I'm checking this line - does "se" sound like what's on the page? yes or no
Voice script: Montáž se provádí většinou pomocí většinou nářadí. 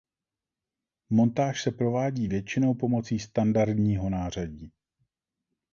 yes